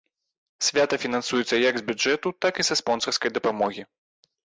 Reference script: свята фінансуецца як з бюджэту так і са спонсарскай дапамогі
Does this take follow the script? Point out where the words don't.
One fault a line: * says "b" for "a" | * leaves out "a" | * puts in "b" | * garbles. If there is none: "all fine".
all fine